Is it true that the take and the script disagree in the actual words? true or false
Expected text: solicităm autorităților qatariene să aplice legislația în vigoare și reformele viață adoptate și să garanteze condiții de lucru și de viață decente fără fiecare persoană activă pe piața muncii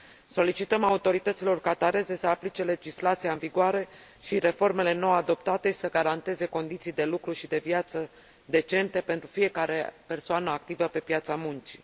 true